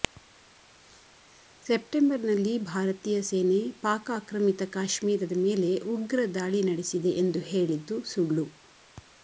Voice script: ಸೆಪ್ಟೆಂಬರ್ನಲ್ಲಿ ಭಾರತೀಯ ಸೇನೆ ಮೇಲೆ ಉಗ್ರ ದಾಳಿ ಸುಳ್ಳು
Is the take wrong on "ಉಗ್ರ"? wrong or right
right